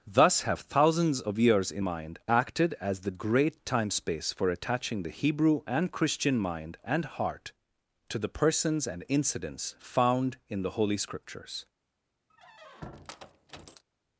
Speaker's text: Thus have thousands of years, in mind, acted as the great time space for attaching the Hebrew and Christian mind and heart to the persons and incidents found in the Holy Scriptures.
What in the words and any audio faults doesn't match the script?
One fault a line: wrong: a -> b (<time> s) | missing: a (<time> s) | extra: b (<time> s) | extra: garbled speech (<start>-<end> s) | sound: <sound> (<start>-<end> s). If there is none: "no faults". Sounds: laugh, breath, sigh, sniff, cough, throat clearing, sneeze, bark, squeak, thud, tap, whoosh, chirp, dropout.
sound: squeak (12.3-13.8 s)